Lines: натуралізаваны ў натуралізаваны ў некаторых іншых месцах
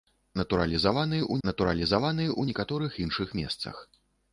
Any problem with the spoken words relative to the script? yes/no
no